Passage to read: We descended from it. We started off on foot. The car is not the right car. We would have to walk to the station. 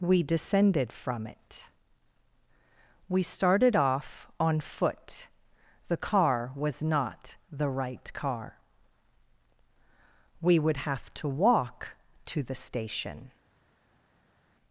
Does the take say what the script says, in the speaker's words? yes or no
no